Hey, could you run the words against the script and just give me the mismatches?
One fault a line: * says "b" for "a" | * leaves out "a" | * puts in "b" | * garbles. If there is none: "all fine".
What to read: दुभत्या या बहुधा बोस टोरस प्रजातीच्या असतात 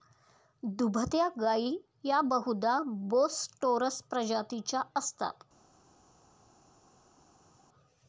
* puts in "गायी"